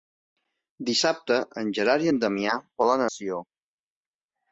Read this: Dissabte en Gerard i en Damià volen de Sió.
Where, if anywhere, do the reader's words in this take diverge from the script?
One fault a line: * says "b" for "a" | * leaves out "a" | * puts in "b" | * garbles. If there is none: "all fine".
all fine